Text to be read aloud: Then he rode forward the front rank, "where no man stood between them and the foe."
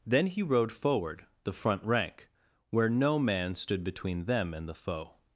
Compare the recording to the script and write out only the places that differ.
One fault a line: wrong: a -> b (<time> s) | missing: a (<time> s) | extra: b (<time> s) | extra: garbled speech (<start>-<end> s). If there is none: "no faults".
no faults